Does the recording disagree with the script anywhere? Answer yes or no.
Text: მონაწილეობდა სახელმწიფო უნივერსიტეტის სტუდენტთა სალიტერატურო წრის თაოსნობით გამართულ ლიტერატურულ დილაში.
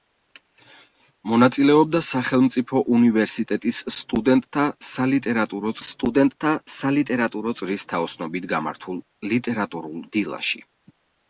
yes